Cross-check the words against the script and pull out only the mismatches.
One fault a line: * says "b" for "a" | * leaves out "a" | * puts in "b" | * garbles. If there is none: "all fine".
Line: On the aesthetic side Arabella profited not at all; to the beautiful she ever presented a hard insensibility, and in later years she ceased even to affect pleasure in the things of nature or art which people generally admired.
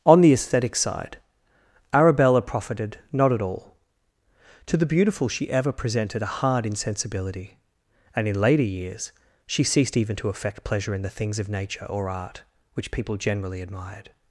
all fine